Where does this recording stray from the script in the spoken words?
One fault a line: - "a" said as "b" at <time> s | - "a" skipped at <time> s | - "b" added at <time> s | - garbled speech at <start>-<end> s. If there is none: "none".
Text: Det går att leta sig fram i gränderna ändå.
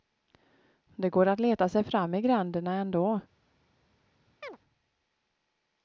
none